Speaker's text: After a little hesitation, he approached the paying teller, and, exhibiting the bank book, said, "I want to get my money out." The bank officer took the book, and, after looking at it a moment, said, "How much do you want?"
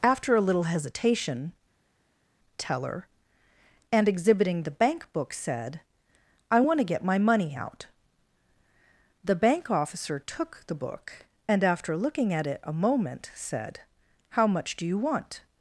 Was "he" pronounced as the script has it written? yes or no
no